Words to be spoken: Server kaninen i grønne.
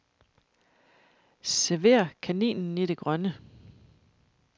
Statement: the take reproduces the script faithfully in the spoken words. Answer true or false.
false